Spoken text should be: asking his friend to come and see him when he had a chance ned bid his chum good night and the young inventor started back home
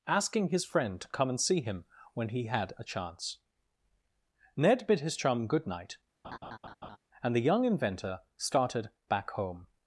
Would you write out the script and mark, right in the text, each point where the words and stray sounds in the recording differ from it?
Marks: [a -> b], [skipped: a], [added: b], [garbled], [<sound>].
asking his friend to come and see him when he had a chance ned bid his chum good night [laugh] and the young inventor started back home